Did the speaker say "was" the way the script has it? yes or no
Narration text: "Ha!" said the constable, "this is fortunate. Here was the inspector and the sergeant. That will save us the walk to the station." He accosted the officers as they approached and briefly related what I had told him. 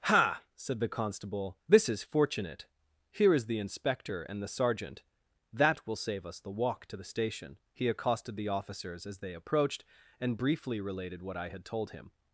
no